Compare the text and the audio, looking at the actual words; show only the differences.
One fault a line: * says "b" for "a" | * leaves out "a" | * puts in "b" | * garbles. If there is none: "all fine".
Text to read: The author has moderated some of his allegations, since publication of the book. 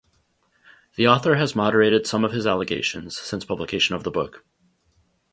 all fine